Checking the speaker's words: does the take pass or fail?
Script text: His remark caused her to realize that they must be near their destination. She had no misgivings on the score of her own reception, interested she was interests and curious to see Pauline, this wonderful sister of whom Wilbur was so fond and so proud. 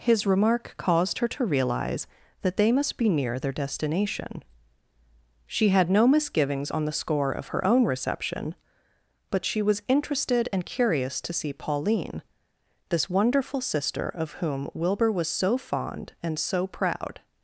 fail